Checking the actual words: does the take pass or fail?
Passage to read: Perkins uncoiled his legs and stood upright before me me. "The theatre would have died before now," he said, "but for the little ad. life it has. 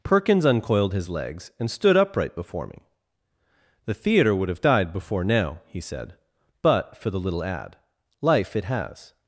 fail